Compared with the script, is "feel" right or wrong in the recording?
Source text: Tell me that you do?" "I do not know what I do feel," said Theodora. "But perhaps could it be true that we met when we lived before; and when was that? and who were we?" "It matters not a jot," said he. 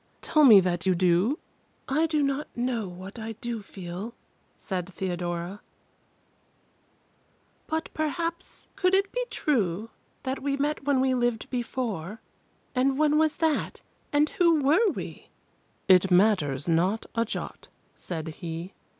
right